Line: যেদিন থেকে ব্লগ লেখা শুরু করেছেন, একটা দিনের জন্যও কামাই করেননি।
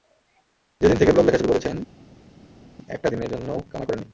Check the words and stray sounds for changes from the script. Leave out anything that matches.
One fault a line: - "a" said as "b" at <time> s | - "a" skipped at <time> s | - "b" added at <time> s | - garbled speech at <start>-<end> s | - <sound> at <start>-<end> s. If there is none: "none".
none